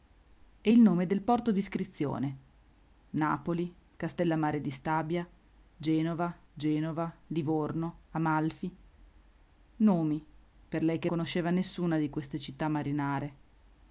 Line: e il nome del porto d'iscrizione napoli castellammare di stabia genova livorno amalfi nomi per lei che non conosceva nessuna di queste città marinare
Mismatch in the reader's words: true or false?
true